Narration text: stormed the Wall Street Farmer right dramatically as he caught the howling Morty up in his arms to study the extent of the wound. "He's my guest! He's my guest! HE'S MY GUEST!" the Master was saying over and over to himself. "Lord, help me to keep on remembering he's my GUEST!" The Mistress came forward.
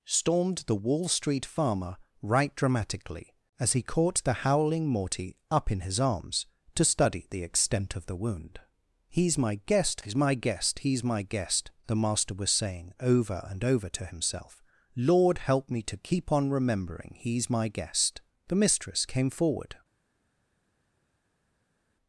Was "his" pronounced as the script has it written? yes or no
yes